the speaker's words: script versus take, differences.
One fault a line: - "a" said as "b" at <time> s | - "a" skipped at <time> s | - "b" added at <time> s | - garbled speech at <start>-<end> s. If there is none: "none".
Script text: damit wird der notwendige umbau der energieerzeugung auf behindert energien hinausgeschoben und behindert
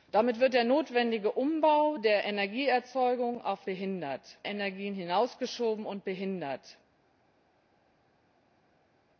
none